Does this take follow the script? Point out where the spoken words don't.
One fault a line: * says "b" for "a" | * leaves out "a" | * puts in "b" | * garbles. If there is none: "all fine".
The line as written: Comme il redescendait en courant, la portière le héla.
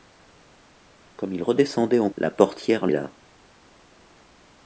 * leaves out "courant"
* leaves out "le"